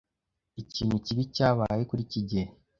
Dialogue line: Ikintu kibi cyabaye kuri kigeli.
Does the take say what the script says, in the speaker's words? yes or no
yes